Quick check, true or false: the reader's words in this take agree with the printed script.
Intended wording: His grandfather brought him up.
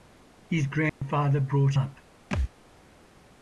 false